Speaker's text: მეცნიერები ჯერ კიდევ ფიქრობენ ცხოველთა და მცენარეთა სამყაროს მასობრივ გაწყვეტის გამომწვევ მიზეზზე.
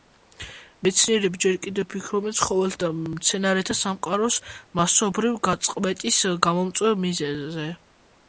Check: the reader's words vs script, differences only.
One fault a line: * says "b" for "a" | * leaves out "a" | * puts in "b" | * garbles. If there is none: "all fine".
all fine